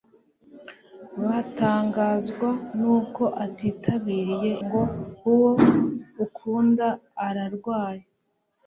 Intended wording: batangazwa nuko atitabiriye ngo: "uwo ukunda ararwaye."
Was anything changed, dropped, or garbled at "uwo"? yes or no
no